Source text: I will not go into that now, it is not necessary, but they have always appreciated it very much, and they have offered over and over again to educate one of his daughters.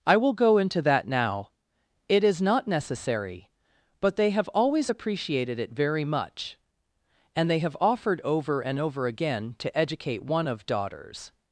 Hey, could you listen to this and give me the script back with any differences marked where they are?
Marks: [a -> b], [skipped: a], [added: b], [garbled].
I will [skipped: not] go into that now, it is not necessary, but they have always appreciated it very much, and they have offered over and over again to educate one of [skipped: his] daughters.